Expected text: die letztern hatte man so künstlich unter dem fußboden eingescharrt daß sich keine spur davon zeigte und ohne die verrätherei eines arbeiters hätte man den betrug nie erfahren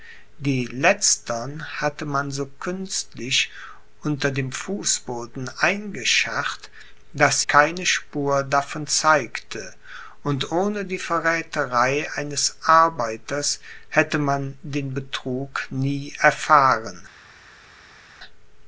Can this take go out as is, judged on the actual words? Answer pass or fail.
fail